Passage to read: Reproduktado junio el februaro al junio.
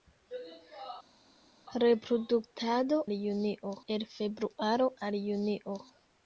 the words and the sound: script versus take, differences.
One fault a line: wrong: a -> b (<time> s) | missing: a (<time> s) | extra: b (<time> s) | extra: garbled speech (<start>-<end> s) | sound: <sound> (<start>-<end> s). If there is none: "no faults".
no faults